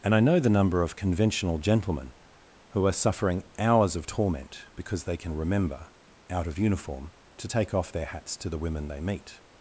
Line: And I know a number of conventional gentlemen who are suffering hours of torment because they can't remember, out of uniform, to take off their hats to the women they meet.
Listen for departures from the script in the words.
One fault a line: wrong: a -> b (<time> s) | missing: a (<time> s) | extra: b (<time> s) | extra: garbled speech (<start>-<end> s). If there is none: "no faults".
wrong: a -> the (0.4 s)
wrong: can't -> can (5.2 s)